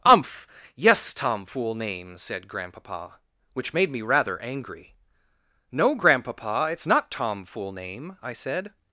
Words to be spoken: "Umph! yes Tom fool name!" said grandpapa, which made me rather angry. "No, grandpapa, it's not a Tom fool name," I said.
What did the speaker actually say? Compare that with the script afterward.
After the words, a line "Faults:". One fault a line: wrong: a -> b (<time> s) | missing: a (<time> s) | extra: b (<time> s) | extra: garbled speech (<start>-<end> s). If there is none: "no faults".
"Umph! yes Tom fool name!" said grandpapa, which made me rather angry. "No, grandpapa, it's not Tom fool name," I said.
Faults:
missing: a (7.1 s)